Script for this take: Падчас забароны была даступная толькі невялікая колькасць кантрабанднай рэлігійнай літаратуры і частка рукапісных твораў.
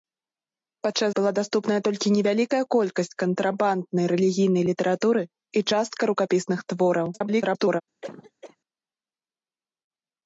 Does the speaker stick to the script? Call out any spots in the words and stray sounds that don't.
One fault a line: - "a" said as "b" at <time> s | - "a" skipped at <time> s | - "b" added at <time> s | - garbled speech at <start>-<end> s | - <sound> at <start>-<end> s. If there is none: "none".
- "забароны" skipped at 1.1 s
- garbled speech at 7.1-7.8 s
- cough at 8.0-8.6 s